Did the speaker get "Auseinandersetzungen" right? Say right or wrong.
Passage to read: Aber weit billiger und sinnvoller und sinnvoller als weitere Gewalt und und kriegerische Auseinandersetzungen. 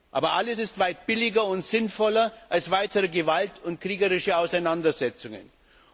right